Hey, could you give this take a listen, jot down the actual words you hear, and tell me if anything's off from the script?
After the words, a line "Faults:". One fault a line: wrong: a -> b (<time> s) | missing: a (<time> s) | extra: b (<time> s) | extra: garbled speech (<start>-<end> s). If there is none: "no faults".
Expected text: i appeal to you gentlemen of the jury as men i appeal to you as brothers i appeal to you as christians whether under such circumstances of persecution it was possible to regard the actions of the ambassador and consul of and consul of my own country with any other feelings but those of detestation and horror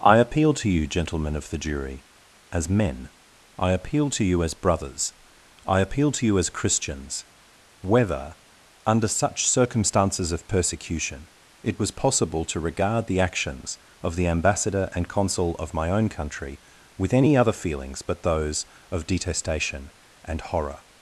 i appeal to you gentlemen of the jury as men i appeal to you as brothers i appeal to you as christians whether under such circumstances of persecution it was possible to regard the actions of the ambassador and consul of my own country with any other feelings but those of detestation and horror
Faults:
missing: and consul of (15.7 s)